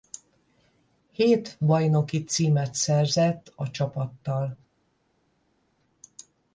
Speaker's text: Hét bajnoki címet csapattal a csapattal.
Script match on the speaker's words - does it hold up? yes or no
no